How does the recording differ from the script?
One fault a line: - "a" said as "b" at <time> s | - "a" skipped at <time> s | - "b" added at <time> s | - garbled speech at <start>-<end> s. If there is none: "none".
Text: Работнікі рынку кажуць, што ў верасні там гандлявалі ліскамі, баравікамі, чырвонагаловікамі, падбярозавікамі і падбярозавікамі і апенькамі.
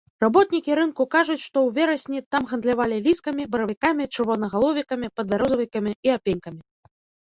- "падбярозавікамі і" skipped at 6.2 s